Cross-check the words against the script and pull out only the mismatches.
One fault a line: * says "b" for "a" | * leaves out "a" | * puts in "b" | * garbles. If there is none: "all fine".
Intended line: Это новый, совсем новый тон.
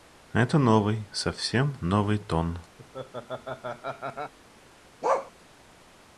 all fine